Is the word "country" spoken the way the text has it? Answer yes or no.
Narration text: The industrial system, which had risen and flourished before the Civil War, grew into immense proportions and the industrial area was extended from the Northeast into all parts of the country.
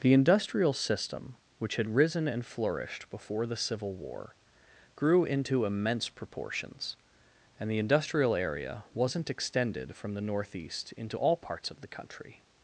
yes